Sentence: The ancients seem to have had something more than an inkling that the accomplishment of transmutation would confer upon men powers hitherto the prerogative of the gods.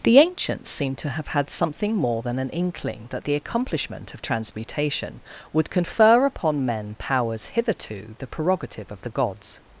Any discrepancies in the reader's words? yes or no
no